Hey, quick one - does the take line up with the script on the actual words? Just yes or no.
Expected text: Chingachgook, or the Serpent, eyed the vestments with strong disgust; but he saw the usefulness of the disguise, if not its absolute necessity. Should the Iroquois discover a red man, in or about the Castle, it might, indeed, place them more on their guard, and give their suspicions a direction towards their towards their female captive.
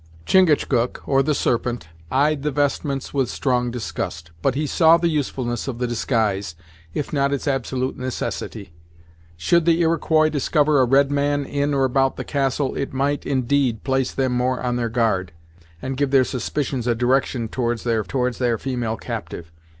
yes